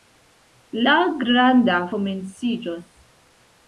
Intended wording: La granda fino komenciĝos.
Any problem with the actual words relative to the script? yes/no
yes